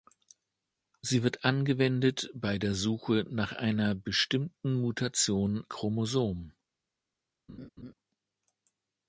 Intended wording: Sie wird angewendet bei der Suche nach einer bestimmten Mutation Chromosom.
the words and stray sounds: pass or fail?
fail